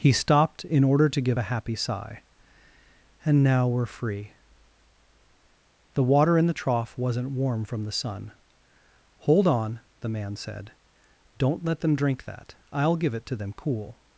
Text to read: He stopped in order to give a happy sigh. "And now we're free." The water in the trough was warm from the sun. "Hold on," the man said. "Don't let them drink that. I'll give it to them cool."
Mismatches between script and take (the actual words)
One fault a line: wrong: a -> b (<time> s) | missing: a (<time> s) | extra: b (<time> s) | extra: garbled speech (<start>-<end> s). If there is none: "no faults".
wrong: was -> wasn't (7.0 s)